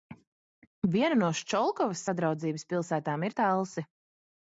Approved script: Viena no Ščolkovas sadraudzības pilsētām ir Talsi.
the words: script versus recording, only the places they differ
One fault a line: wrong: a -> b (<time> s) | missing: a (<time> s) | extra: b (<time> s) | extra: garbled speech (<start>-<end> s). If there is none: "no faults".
no faults